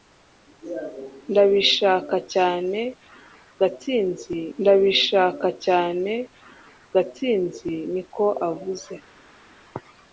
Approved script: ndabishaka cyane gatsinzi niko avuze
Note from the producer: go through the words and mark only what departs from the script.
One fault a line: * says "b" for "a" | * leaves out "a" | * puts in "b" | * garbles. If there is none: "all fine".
* puts in "ndabishaka cyane gatsinzi"